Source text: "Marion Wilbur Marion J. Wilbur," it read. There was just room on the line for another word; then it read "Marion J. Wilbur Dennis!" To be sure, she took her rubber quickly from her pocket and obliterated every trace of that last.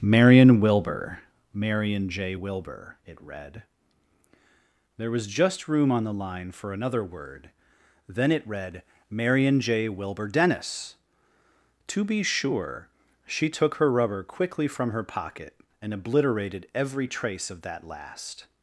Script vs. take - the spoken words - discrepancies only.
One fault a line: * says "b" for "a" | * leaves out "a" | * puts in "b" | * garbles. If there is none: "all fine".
all fine